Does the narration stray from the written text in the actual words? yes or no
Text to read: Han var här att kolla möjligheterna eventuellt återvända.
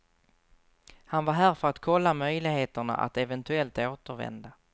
yes